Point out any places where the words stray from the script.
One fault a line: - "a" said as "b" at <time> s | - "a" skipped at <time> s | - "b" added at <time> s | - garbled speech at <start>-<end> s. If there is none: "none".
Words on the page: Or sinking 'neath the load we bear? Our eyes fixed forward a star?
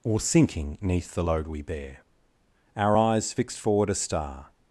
none